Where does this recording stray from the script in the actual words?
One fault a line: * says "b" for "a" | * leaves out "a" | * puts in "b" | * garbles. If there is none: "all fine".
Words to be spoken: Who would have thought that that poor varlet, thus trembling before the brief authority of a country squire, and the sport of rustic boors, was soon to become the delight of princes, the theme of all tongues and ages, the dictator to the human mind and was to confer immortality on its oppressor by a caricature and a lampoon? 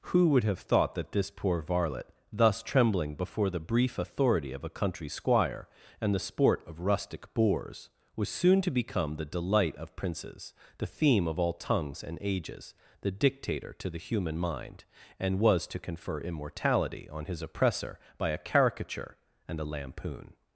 * says "this" for "that"
* says "his" for "its"